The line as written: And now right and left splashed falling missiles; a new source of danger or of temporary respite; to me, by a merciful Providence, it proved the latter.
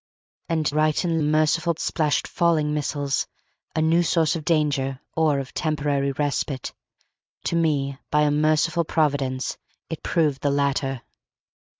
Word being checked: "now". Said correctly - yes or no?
no